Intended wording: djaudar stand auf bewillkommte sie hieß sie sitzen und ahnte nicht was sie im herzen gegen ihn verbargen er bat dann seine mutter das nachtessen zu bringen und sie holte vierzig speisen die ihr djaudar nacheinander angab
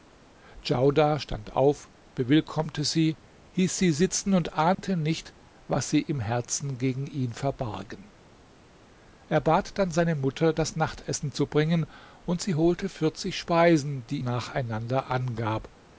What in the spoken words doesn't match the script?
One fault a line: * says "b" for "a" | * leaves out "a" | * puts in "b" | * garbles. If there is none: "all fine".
* leaves out "ihr djaudar"